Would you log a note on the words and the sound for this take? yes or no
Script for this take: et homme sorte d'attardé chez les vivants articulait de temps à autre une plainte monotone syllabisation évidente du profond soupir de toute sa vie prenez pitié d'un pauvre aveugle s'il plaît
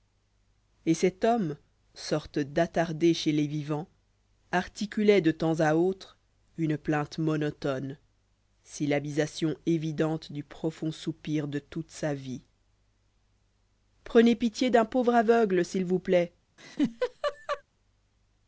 yes